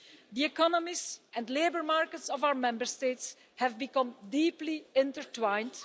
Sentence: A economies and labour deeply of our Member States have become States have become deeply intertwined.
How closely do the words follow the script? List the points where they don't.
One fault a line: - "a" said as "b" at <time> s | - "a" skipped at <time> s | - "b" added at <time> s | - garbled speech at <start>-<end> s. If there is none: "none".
- "A" said as "The" at 0.3 s
- "deeply" said as "markets" at 1.8 s
- "States have become" skipped at 4.2 s